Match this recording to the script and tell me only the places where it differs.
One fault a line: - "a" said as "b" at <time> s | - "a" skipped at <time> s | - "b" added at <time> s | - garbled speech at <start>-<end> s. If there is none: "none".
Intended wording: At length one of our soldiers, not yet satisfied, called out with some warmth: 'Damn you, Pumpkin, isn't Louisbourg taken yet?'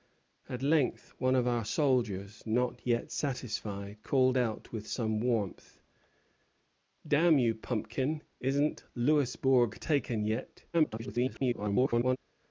- garbled speech at 10.7-12.2 s